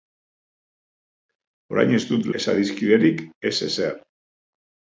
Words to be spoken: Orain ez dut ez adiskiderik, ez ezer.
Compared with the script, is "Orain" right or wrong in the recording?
right